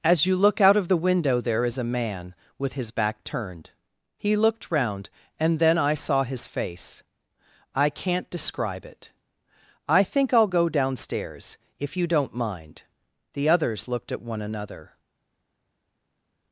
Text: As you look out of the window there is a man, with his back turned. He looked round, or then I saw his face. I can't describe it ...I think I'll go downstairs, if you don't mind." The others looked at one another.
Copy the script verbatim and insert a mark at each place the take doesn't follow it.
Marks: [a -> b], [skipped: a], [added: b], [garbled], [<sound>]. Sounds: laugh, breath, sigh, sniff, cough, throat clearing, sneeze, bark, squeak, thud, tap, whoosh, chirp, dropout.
As you look out of the window there is a man, with his back turned. He looked round, [or -> and] then I saw his face. I can't describe it ...I think I'll go downstairs, if you don't mind." The others looked at one another.